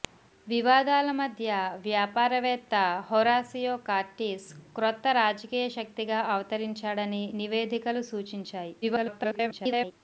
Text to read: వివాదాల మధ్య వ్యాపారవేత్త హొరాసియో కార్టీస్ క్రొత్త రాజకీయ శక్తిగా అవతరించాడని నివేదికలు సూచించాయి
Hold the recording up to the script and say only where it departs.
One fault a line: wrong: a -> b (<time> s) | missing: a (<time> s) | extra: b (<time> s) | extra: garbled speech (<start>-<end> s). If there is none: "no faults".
extra: garbled speech (8.8-9.9 s)